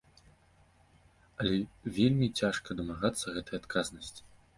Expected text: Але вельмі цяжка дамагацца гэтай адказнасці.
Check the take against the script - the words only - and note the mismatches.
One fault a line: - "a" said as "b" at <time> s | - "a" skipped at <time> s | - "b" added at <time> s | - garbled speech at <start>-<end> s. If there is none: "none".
none